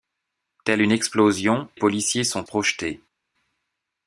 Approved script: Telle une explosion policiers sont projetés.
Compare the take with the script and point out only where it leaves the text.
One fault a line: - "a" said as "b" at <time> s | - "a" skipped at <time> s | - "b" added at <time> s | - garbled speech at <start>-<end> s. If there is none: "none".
none